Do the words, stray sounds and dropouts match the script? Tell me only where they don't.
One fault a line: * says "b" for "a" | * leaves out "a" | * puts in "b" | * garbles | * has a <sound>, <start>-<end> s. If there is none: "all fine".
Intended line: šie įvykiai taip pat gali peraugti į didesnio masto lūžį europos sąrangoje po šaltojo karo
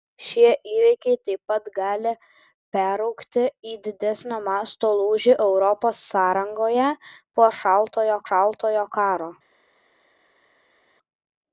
* puts in "šaltojo"